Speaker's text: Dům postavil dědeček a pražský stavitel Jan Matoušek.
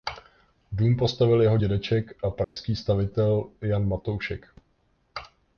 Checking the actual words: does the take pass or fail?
fail